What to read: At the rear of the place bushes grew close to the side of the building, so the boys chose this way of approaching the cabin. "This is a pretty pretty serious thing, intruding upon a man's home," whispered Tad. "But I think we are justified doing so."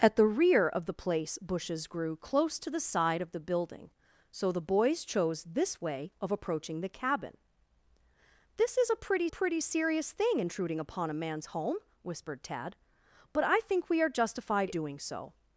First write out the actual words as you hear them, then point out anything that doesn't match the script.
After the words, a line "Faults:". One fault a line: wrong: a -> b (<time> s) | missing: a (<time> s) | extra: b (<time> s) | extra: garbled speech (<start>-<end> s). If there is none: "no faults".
At the rear of the place bushes grew close to the side of the building, so the boys chose this way of approaching the cabin. "This is a pretty pretty serious thing, intruding upon a man's home," whispered Tad. "But I think we are justified doing so."
Faults:
no faults